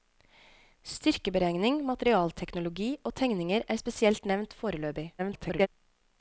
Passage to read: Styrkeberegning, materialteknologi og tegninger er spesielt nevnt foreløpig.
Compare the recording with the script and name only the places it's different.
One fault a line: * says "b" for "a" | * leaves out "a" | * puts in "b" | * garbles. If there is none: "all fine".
* garbles